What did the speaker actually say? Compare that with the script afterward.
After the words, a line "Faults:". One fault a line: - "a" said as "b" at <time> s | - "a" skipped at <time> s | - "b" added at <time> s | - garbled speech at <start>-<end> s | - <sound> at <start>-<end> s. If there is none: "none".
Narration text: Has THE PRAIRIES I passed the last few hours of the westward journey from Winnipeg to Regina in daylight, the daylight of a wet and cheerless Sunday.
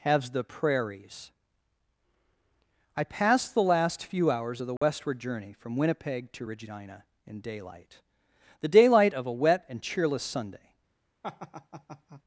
Has THE PRAIRIES I passed the last few hours of the westward journey from Winnipeg to Regina in daylight, the daylight of a wet and cheerless Sunday.
Faults:
- dropout at 4.8-4.8 s
- laugh at 11.2-12.2 s